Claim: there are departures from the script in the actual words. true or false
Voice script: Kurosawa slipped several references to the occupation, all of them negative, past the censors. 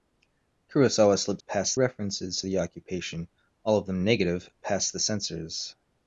true